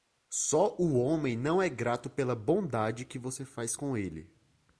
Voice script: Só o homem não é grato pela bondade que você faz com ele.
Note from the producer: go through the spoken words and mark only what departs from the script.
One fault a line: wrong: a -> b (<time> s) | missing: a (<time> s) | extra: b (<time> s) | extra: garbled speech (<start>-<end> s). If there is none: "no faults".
no faults